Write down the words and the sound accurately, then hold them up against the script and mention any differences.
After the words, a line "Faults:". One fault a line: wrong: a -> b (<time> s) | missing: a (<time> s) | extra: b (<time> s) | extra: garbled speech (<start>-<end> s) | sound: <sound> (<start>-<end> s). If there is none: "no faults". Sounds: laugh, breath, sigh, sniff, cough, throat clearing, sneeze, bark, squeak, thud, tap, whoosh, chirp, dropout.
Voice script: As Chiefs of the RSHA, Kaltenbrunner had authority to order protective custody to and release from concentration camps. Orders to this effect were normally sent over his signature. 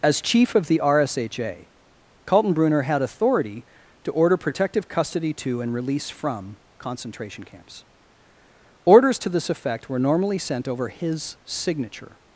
As Chief of the RSHA, Kaltenbrunner had authority to order protective custody to and release from concentration camps. Orders to this effect were normally sent over his signature.
Faults:
wrong: Chiefs -> Chief (0.2 s)